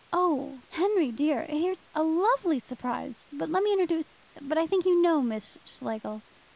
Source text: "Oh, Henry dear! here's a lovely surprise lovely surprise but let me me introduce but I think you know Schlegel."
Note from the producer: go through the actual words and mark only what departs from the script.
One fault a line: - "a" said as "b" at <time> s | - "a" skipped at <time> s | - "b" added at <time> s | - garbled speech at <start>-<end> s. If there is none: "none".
- "lovely surprise" skipped at 3.2 s
- "me" skipped at 3.7 s
- "Miss" added at 5.2 s